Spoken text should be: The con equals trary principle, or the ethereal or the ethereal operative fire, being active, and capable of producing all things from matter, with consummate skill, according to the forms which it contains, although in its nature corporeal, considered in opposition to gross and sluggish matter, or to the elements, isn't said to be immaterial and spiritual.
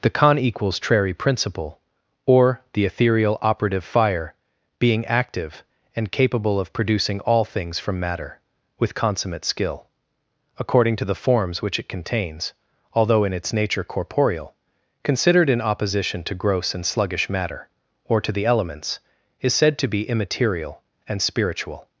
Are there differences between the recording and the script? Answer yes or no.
yes